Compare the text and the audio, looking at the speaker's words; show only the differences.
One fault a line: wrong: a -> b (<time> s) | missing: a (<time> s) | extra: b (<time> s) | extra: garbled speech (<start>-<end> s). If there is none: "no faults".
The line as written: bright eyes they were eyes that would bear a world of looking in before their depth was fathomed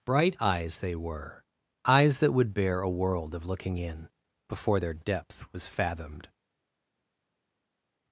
no faults